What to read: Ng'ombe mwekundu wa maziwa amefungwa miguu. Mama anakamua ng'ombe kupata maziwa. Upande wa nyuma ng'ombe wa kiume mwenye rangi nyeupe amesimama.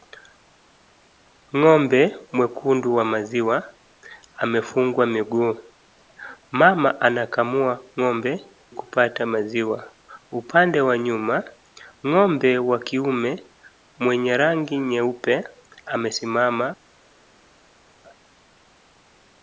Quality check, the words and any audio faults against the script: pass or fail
pass